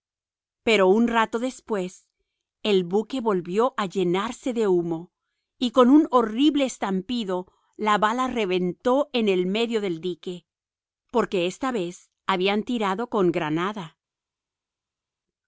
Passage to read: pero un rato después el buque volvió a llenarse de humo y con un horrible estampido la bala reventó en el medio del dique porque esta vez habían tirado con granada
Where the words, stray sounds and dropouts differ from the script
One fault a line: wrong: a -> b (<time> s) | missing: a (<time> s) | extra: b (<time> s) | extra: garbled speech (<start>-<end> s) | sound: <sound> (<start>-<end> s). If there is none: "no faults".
no faults